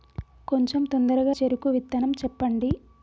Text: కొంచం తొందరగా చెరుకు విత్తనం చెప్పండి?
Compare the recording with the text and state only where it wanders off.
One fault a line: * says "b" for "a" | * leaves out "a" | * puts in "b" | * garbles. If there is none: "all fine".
all fine